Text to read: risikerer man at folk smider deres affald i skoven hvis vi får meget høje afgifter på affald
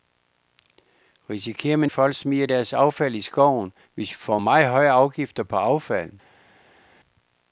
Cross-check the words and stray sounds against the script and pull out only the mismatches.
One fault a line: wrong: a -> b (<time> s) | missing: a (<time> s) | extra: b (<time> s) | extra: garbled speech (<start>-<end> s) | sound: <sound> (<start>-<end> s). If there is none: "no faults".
no faults